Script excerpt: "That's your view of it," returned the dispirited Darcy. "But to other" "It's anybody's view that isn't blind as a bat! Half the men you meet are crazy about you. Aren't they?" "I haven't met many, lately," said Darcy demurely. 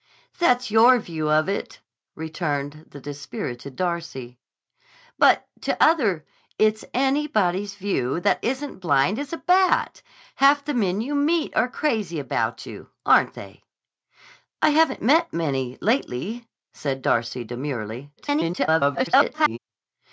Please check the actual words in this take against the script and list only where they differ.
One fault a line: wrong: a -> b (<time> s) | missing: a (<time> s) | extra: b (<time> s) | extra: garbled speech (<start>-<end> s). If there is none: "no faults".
extra: garbled speech (18.2-19.6 s)